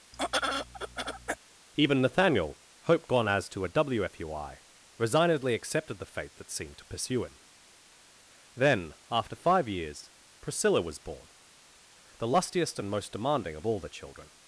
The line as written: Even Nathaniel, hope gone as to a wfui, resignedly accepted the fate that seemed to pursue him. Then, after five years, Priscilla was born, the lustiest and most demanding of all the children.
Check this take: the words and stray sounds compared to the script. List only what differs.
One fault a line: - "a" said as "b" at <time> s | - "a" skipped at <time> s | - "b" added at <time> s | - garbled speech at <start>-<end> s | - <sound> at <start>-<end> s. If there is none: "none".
- throat clearing at 0.1-1.4 s